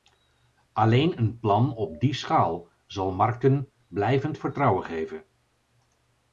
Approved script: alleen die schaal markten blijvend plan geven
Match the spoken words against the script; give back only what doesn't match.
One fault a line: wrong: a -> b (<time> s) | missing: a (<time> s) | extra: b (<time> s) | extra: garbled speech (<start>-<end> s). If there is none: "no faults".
extra: een plan op (1.2 s)
extra: zal (2.9 s)
wrong: plan -> vertrouwen (4.4 s)